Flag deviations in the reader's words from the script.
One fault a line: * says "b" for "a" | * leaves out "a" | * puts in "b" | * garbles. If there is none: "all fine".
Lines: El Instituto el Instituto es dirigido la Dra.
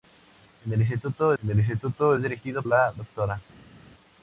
all fine